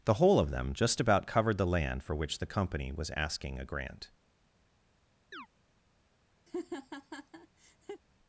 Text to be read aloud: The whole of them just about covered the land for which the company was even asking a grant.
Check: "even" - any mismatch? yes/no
yes